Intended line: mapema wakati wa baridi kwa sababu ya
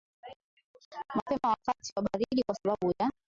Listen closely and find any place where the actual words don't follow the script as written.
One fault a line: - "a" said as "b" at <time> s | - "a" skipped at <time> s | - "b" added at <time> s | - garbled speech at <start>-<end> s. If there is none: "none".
none